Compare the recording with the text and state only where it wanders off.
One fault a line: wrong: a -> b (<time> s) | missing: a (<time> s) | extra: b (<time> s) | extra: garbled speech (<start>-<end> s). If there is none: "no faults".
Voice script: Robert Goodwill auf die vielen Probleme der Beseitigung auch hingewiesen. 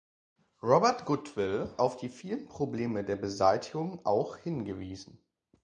no faults